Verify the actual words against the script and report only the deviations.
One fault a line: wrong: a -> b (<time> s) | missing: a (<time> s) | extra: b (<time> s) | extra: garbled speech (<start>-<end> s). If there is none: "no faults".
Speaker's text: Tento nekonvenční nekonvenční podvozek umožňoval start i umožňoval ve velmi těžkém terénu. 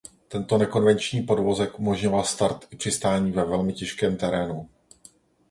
missing: nekonvenční (1.2 s)
wrong: umožňoval -> přistání (2.8 s)